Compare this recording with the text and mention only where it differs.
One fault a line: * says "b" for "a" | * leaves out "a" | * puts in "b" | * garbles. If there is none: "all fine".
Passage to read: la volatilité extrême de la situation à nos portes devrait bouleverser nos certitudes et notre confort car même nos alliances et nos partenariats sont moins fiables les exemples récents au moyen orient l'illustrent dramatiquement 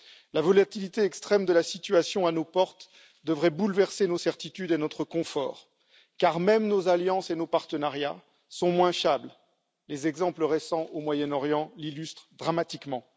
all fine